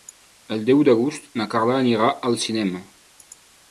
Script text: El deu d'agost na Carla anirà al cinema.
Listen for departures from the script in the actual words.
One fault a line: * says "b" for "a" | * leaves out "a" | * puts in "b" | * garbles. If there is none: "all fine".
all fine